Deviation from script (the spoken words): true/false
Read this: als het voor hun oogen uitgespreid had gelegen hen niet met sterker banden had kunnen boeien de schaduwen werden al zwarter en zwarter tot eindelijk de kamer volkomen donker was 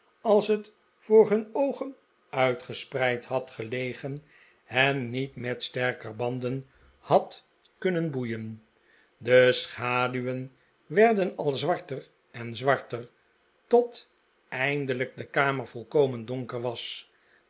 false